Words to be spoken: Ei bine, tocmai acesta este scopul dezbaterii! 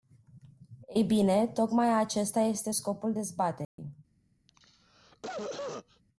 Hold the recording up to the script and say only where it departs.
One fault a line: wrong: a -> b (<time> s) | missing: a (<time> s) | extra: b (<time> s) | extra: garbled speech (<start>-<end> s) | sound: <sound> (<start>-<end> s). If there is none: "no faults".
sound: dropout (3.6-3.8 s)
sound: cough (4.5-6.0 s)